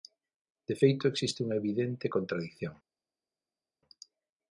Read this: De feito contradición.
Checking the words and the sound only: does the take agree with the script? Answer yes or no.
no